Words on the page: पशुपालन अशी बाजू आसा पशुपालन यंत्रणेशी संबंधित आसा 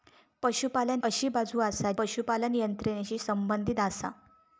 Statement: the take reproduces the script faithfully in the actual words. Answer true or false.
true